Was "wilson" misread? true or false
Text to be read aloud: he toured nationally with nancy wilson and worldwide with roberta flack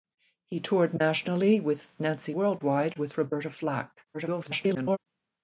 true